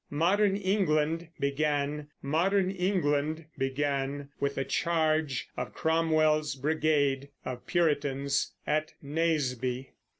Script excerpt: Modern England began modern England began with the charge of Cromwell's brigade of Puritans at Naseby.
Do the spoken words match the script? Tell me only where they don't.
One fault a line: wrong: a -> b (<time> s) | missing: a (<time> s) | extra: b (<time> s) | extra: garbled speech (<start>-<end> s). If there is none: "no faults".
no faults